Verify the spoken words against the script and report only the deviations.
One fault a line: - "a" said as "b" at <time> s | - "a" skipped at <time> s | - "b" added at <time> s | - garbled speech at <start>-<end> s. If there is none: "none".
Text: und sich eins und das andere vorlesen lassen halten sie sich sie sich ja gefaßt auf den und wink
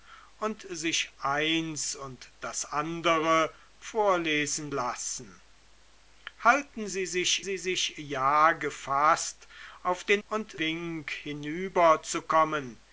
none